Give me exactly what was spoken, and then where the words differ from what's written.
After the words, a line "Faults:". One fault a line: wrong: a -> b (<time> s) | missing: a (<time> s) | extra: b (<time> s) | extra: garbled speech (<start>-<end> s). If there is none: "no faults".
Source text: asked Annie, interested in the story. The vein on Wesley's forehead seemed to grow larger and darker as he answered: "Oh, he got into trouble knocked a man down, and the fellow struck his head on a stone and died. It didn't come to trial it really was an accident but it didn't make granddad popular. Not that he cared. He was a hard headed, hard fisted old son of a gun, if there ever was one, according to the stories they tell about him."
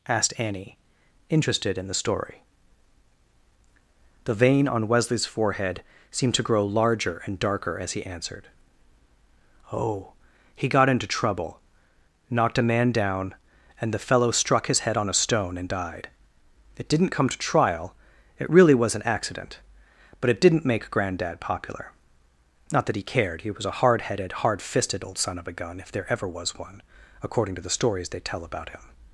asked Annie, interested in the story. The vein on Wesley's forehead seemed to grow larger and darker as he answered: "Oh, he got into trouble knocked a man down, and the fellow struck his head on a stone and died. It didn't come to trial it really was an accident but it didn't make granddad popular. Not that he cared. He was a hard headed, hard fisted old son of a gun, if there ever was one, according to the stories they tell about him."
Faults:
no faults